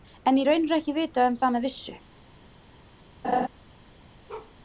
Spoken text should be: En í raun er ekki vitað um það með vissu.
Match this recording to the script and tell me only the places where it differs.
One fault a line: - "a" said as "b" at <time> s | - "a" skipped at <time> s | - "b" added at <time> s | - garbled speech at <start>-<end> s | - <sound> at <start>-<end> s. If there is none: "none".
- laugh at 3.2-3.5 s
- bark at 4.3-4.5 s